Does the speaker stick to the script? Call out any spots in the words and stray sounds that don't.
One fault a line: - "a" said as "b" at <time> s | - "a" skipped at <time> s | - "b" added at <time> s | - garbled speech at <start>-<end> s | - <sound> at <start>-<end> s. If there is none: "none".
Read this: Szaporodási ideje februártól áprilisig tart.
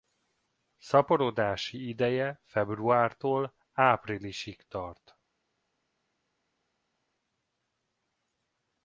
none